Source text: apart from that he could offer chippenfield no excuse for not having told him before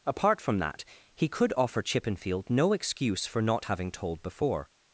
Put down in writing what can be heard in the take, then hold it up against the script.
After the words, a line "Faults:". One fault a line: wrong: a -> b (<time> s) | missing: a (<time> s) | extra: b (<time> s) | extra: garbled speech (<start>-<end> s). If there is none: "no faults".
apart from that he could offer chippenfield no excuse for not having told before
Faults:
missing: him (4.2 s)